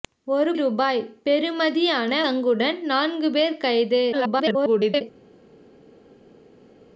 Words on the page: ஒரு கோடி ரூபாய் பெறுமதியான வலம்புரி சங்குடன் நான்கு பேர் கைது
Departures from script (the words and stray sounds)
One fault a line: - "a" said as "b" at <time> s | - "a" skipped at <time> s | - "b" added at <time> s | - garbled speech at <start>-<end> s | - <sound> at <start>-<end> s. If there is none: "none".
- "கோடி" skipped at 0.5 s
- "வலம்புரி" skipped at 2.2 s
- garbled speech at 4.1-5.0 s